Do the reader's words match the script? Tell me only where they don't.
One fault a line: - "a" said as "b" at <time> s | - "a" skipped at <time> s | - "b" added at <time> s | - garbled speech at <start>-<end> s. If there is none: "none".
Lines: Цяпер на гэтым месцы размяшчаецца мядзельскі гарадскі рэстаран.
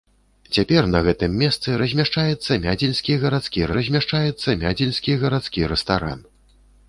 - "размяшчаецца мядзельскі гарадскі" added at 3.8 s